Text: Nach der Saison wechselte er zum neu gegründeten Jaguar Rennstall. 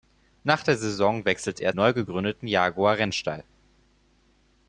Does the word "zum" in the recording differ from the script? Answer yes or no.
yes